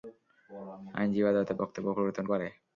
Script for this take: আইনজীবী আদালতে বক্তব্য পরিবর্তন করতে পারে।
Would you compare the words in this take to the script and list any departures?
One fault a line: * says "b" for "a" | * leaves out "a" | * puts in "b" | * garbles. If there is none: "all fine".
* leaves out "করতে"